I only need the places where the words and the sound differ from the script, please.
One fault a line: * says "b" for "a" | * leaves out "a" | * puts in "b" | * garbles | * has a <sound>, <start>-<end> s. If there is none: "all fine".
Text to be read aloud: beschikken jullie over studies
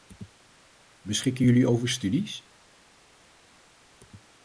all fine